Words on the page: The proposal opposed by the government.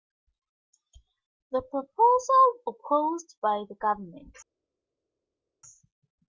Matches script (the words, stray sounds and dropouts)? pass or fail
pass